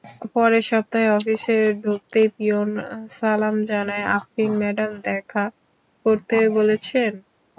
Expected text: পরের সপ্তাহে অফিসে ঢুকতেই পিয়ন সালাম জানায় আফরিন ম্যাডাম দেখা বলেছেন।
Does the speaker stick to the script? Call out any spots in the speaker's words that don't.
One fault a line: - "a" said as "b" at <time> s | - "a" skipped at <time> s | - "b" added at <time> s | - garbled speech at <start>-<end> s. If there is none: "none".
- "করতে" added at 6.0 s